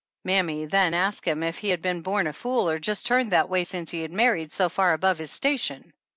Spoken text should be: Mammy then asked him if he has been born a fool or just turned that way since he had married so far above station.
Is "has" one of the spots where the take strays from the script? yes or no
yes